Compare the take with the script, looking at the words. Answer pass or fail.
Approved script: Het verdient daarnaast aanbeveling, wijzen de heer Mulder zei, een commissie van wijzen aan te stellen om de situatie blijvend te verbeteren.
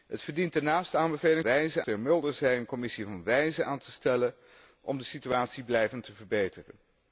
pass